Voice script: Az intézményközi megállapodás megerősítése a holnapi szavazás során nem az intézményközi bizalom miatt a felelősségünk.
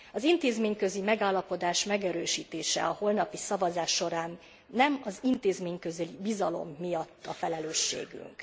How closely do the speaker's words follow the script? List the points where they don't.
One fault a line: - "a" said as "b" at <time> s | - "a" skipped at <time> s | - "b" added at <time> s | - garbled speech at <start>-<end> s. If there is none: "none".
none